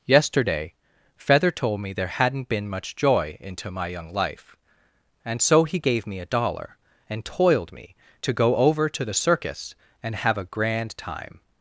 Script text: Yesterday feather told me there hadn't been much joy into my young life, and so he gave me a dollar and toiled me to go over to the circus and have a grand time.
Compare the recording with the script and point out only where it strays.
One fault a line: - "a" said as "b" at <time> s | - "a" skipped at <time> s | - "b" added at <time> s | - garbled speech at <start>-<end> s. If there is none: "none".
none